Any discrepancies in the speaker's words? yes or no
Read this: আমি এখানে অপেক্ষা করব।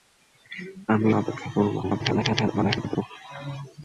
yes